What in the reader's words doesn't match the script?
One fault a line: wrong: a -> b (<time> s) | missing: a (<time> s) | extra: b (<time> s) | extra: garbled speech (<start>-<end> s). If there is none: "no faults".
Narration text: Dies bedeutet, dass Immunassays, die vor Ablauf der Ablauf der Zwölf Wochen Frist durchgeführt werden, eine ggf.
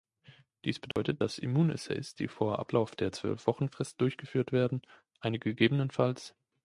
missing: Ablauf der (3.1 s)